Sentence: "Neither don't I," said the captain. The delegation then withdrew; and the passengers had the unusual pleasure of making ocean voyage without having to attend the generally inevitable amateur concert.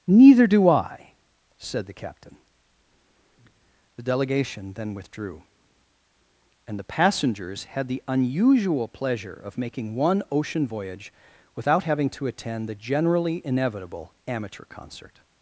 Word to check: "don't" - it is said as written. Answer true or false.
false